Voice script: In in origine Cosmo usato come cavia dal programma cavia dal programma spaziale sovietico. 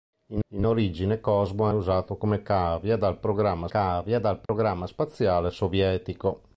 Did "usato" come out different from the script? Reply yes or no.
no